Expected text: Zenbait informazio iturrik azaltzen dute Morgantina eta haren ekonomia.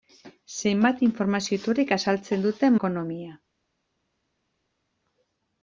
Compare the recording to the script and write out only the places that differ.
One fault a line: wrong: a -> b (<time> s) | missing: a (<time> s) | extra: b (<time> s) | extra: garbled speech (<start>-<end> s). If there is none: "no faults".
missing: Morgantina eta haren (2.7 s)